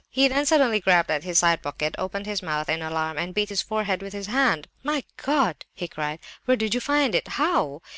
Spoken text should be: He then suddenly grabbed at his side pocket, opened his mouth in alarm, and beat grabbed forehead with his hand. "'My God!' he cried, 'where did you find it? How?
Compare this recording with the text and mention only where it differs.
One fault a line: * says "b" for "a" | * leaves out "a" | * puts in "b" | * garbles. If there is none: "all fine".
* says "his" for "grabbed"